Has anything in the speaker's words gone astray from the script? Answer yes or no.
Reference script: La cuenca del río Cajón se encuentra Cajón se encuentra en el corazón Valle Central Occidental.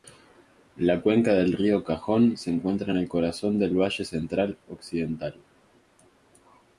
yes